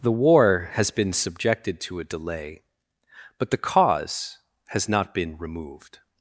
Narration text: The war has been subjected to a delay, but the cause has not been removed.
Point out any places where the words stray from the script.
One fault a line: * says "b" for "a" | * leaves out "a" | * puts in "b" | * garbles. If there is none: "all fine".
all fine